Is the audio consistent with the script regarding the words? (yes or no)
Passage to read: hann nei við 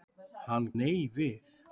yes